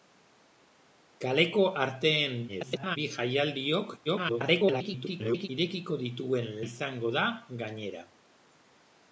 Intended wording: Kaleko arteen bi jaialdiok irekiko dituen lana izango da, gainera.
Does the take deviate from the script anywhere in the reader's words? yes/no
yes